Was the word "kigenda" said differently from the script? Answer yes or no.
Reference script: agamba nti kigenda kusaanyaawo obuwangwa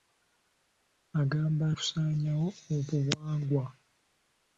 yes